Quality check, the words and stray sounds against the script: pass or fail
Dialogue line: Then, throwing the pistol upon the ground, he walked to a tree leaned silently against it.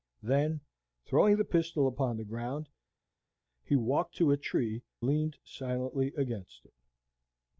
pass